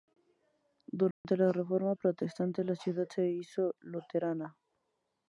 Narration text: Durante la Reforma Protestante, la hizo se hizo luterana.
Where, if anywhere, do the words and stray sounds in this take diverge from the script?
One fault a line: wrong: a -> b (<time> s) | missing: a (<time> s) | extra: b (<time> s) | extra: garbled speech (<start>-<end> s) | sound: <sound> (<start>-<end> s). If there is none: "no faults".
sound: dropout (1.1-1.2 s)
wrong: hizo -> ciudad (2.8 s)